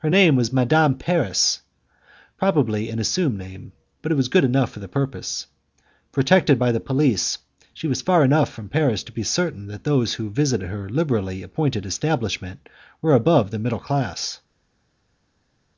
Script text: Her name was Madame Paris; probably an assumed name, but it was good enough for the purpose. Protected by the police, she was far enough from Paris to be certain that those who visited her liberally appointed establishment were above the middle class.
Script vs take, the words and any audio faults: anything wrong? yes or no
no